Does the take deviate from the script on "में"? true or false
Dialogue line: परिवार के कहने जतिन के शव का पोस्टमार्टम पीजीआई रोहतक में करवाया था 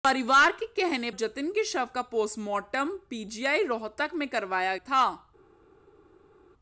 false